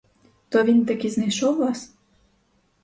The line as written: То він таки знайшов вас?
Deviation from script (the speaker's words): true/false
false